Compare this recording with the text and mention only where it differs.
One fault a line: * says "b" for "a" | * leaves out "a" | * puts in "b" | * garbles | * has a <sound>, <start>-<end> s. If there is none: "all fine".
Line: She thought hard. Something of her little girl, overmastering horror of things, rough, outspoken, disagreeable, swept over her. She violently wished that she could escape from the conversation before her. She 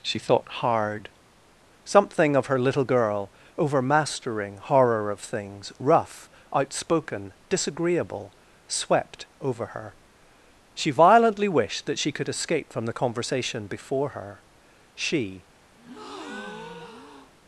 * has a breath, 15.8-17.3 s